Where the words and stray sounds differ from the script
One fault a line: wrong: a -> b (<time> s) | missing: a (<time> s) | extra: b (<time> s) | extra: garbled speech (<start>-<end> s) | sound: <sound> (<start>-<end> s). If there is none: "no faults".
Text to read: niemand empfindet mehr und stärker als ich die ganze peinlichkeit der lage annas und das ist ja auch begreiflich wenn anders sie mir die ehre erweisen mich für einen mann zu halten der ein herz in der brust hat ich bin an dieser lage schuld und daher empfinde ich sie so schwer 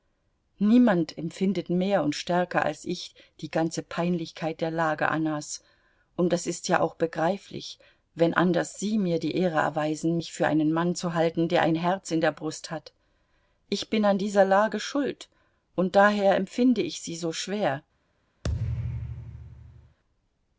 sound: thud (18.4-20.0 s)